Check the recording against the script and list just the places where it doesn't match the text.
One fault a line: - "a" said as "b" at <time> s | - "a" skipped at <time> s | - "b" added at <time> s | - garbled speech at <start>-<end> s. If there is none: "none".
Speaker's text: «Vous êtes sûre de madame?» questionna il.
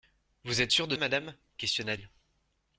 none